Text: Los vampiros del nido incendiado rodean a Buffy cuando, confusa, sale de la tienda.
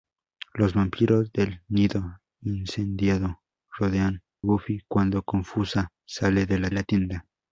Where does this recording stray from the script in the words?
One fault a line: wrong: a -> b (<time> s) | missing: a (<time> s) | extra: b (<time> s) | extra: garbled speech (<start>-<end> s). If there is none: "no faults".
missing: a (4.2 s)
extra: la (6.7 s)